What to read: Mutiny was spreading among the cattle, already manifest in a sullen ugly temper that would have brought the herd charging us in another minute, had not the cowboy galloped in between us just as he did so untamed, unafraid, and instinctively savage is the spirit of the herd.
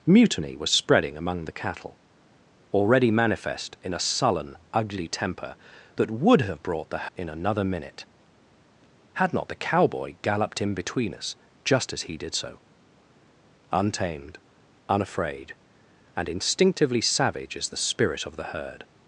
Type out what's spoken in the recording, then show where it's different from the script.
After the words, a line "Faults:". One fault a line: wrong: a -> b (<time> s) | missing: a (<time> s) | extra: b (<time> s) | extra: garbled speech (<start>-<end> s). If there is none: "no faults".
Mutiny was spreading among the cattle, already manifest in a sullen ugly temper that would have brought the in another minute, had not the cowboy galloped in between us just as he did so untamed, unafraid, and instinctively savage is the spirit of the herd.
Faults:
missing: herd charging us (7.1 s)